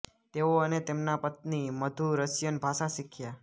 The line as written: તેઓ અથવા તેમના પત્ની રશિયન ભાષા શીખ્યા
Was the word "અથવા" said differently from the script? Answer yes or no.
yes